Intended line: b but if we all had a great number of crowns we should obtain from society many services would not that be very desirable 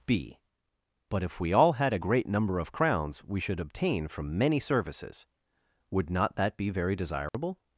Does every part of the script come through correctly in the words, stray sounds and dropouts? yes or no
no